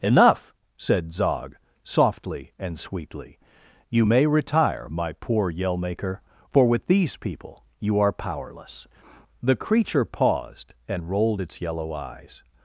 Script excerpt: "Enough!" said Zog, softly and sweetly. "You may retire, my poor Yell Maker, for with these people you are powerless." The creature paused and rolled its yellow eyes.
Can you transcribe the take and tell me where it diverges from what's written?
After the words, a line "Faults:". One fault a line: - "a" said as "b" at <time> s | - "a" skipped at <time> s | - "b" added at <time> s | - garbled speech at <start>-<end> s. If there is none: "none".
"Enough!" said Zog, softly and sweetly. "You may retire, my poor Yell Maker, for with these people you are powerless." The creature paused and rolled its yellow eyes.
Faults:
none